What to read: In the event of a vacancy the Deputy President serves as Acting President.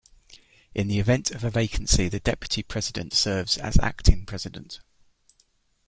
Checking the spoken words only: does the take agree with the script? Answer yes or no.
yes